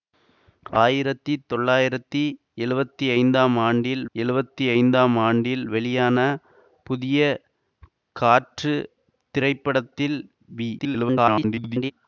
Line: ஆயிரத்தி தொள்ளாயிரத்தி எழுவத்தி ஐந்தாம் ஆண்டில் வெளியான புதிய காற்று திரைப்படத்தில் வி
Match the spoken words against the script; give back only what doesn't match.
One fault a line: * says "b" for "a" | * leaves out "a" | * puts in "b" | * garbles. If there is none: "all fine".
* puts in "எழுவத்தி ஐந்தாம் ஆண்டில்"
* garbles